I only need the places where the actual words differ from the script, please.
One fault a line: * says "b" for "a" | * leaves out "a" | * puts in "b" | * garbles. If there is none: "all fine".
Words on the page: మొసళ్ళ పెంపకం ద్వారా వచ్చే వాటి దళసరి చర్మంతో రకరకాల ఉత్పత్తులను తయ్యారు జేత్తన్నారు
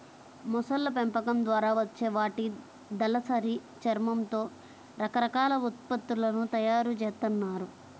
all fine